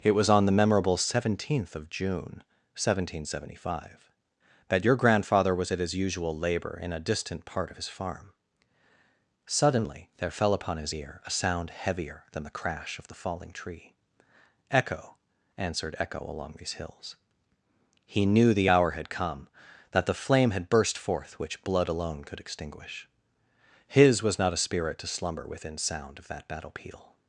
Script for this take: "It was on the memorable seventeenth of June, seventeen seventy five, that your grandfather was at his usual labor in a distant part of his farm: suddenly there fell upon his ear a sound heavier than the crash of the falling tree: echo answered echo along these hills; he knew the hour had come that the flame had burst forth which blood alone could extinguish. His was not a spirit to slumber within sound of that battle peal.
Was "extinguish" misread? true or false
false